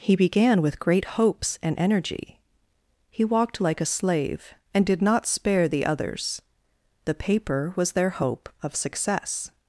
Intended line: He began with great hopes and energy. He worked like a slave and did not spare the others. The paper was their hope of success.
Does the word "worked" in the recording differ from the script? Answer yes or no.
yes